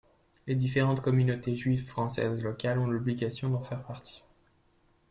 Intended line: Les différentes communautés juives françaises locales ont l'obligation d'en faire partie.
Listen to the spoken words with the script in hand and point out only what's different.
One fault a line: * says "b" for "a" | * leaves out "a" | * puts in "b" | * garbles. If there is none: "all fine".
all fine